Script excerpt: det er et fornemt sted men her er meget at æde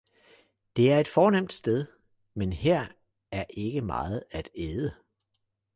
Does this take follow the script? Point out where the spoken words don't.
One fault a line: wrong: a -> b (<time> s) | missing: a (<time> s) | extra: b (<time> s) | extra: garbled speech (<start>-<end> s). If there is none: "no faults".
extra: ikke (3.5 s)